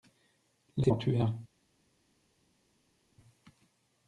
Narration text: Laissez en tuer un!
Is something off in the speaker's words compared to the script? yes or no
no